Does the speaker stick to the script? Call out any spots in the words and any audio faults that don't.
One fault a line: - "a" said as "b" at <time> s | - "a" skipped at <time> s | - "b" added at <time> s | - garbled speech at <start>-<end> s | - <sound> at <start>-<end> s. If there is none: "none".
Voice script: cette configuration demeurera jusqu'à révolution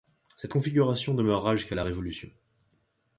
- "la" added at 1.7 s